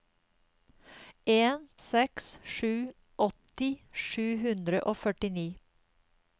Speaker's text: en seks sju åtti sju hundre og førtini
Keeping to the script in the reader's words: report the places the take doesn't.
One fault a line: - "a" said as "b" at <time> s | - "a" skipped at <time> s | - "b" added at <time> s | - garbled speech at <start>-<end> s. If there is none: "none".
none